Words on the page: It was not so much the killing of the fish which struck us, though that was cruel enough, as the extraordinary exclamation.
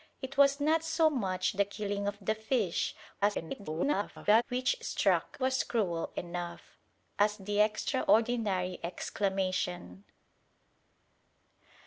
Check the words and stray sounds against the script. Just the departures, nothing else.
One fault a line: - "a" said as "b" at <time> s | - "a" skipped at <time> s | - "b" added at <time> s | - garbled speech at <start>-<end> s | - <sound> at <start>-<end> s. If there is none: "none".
- garbled speech at 3.2-4.4 s
- "us though that" skipped at 5.4 s